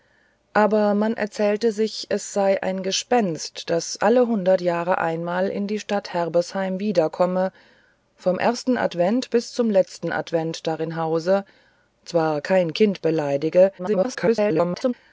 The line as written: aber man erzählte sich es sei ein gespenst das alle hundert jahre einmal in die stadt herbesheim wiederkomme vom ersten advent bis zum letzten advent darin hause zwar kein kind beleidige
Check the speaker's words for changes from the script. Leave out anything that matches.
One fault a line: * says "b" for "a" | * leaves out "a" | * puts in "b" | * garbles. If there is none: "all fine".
* garbles